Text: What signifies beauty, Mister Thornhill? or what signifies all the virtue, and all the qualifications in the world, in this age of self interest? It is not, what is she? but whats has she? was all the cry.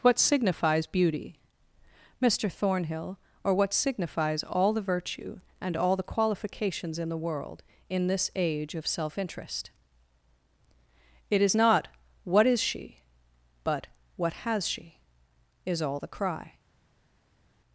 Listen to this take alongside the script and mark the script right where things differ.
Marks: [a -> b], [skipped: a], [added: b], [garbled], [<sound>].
What signifies beauty, Mister Thornhill? or what signifies all the virtue, and all the qualifications in the world, in this age of self interest? It is not, what is she? but [whats -> what] has she? [was -> is] all the cry.